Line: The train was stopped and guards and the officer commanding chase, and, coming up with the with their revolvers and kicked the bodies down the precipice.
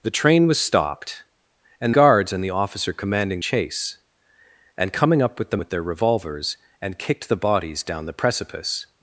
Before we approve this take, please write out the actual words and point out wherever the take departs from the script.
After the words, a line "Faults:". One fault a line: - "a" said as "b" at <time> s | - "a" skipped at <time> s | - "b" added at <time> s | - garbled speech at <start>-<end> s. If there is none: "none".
The train was stopped and guards and the officer commanding chase, and, coming up with the with their revolvers and kicked the bodies down the precipice.
Faults:
none